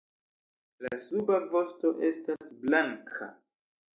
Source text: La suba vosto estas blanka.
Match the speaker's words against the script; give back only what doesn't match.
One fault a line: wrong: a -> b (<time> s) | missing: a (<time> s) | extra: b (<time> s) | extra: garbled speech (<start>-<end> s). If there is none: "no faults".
no faults